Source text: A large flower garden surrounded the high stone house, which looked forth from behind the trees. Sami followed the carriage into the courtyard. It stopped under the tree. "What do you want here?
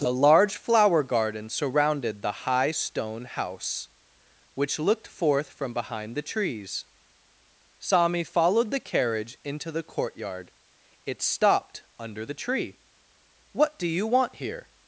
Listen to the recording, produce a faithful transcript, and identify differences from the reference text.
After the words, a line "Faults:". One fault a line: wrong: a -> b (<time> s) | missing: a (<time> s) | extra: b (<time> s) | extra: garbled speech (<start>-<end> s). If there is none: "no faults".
A large flower garden surrounded the high stone house, which looked forth from behind the trees. Sami followed the carriage into the courtyard. It stopped under the tree. "What do you want here?
Faults:
no faults